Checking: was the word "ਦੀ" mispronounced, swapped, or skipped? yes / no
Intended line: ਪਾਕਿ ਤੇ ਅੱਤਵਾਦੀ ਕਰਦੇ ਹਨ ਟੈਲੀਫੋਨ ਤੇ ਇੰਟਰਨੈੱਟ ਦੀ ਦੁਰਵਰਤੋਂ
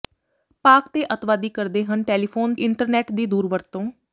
no